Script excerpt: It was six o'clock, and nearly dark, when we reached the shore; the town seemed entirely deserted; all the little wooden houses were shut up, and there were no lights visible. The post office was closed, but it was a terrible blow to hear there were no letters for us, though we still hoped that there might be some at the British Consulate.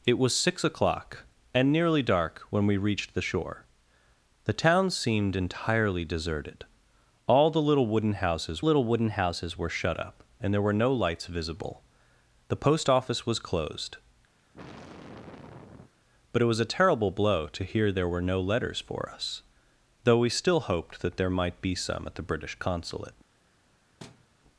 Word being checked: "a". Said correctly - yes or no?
yes